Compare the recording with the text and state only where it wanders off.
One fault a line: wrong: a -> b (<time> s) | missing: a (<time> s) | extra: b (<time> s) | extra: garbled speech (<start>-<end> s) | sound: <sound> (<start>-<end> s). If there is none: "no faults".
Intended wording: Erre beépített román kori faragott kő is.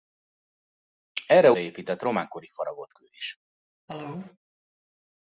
sound: cough (3.9-4.4 s)